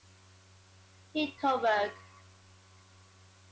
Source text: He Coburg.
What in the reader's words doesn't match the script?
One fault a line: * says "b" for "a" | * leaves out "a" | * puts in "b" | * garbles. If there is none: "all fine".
all fine